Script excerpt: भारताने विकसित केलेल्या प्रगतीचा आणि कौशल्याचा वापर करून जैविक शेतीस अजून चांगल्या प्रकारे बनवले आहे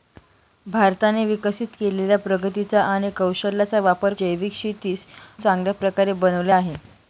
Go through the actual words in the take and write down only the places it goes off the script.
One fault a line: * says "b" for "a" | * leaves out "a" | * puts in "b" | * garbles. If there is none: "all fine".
* leaves out "करून"
* leaves out "अजून"